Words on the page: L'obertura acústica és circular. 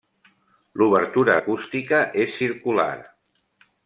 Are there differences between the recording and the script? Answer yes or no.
no